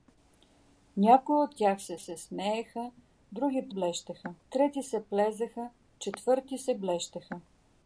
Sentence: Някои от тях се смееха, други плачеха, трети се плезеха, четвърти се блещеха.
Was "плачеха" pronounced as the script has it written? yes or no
no